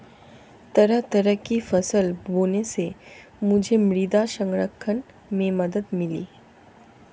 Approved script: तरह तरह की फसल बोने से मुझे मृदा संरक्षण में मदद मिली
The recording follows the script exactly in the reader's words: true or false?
true